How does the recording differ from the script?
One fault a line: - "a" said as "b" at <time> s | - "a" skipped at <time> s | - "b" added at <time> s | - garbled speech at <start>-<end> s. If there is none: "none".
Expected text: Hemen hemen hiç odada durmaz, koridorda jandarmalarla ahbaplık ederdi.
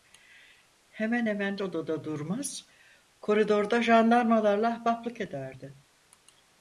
- "hiç" skipped at 1.6 s